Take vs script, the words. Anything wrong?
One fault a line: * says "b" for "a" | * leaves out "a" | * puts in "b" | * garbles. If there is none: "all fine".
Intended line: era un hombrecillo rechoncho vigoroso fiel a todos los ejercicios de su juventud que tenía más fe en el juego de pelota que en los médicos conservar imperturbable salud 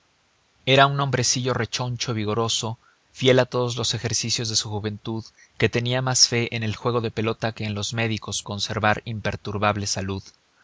all fine